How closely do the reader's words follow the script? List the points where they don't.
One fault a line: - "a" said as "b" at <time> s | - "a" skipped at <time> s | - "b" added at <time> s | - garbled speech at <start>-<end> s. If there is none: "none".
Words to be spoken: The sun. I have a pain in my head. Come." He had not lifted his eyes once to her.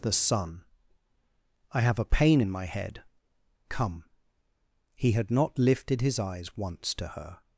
none